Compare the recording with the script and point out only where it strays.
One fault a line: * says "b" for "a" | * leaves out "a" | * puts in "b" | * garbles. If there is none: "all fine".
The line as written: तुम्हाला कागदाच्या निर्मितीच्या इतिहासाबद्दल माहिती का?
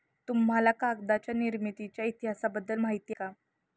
all fine